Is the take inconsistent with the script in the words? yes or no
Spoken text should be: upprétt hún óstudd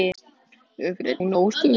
no